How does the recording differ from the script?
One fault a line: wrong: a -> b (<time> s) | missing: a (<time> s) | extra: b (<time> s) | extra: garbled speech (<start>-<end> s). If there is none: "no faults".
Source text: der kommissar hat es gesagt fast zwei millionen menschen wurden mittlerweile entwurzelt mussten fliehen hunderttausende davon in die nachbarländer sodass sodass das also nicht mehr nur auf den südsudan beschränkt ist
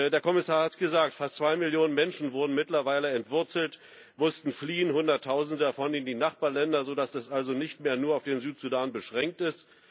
missing: sodass (7.1 s)